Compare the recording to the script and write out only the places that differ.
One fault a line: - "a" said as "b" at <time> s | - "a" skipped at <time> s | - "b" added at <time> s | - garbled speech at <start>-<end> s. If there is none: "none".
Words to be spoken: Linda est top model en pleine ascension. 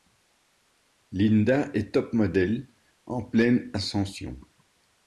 none